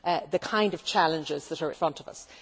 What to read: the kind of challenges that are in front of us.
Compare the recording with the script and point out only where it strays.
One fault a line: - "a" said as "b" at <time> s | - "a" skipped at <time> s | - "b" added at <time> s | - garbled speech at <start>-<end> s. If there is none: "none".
- "in" skipped at 1.7 s